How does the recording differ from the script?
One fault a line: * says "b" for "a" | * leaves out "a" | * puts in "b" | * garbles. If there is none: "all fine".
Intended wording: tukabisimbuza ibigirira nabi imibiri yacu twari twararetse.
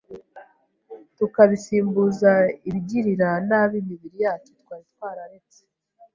all fine